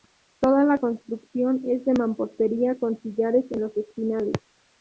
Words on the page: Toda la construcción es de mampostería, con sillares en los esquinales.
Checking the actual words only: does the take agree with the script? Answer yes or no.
yes